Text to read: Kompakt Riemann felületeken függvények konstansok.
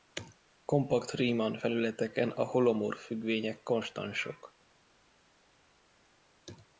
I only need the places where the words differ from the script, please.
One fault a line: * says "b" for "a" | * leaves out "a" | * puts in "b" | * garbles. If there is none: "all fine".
* puts in "a holomorf"